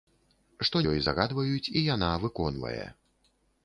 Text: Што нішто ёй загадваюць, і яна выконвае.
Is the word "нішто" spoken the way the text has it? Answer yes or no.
no